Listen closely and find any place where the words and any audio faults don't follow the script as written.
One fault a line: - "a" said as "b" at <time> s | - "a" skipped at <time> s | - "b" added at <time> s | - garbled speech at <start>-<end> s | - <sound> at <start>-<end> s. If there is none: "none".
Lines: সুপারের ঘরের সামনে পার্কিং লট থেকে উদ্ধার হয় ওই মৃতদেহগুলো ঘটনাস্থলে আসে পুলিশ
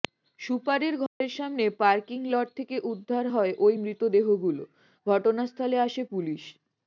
- dropout at 1.1-1.2 s